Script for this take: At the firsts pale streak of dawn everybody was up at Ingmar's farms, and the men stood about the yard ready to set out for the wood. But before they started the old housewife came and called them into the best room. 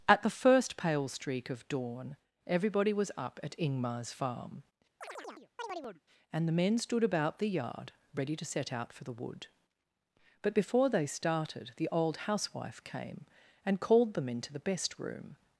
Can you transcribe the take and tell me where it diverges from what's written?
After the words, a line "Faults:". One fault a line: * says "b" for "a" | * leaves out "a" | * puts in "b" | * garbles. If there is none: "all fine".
At the first pale streak of dawn everybody was up at Ingmar's farm, and the men stood about the yard ready to set out for the wood. But before they started the old housewife came and called them into the best room.
Faults:
* says "first" for "firsts"
* says "farm" for "farms"